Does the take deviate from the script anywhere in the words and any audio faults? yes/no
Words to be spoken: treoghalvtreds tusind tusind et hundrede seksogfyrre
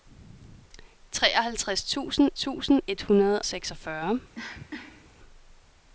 yes